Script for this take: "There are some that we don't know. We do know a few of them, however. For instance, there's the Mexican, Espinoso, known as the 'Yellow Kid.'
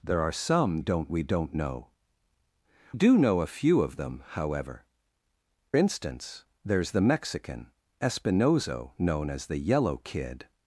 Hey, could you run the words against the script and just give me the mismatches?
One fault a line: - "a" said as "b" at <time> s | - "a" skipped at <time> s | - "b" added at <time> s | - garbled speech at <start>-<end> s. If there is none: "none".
- "that" said as "don't" at 0.8 s
- "We" skipped at 1.9 s
- "For" skipped at 4.8 s